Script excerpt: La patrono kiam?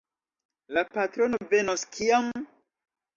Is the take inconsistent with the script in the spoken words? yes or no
yes